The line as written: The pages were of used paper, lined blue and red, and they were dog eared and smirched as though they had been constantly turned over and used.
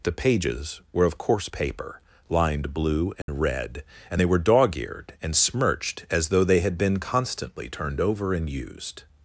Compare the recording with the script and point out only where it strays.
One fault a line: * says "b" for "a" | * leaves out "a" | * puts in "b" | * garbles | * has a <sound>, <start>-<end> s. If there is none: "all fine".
* says "coarse" for "used"
* has a dropout, 3.2-3.3 s